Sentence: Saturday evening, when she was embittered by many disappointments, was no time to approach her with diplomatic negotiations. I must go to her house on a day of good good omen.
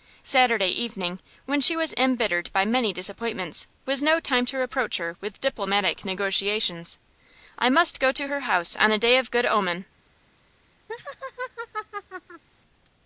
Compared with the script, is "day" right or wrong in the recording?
right